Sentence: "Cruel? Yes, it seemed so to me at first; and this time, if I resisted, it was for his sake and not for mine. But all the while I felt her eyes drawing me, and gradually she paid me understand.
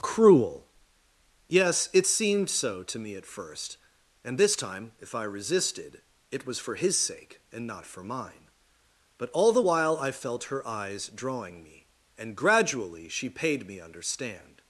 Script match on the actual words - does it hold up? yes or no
yes